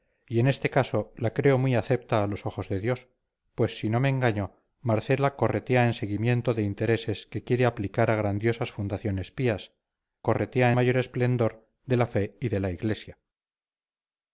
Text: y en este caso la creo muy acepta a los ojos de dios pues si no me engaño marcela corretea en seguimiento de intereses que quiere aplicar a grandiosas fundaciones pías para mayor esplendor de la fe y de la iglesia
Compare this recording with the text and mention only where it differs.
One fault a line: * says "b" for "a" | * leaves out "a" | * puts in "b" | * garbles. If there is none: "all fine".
* says "corretea" for "para"